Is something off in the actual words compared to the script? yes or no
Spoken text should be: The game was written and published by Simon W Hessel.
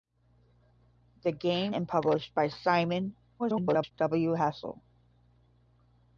yes